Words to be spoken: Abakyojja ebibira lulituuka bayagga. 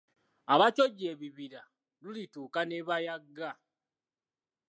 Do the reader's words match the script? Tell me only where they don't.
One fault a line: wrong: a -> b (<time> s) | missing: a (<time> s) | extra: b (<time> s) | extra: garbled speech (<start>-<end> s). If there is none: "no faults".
extra: ne (2.7 s)